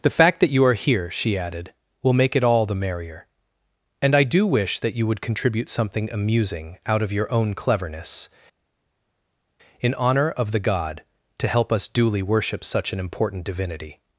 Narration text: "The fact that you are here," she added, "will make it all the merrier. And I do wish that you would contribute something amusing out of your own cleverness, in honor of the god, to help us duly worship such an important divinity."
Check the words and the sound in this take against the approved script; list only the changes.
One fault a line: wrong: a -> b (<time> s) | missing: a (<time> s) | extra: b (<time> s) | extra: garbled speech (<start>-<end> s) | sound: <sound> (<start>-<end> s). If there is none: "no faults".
no faults